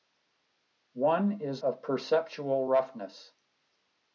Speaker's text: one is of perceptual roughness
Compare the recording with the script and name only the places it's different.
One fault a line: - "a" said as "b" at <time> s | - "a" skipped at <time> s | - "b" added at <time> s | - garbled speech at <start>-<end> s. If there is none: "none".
none